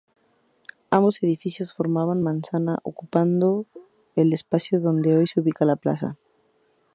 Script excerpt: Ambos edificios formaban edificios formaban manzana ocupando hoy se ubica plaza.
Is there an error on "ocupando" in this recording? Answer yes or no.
yes